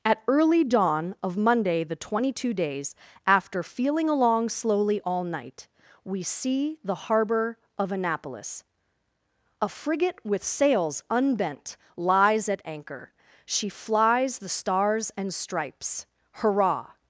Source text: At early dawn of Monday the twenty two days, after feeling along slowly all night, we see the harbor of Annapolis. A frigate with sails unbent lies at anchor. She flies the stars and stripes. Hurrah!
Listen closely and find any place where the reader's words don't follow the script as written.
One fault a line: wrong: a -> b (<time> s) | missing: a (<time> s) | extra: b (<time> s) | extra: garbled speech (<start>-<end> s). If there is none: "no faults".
no faults